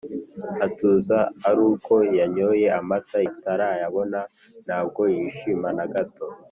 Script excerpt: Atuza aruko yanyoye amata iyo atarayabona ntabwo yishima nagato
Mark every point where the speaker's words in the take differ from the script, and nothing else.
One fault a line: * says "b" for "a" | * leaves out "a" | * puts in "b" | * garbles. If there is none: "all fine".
* leaves out "iyo"